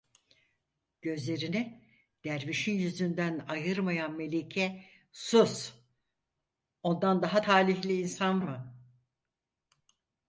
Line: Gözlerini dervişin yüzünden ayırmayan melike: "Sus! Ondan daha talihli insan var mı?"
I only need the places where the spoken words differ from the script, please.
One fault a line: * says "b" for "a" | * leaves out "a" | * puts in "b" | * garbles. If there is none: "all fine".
* leaves out "var"